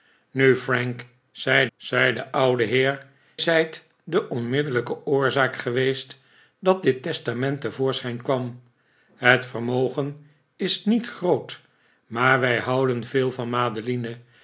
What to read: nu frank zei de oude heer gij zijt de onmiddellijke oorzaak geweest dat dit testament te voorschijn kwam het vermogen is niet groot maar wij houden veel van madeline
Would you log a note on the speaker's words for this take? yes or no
yes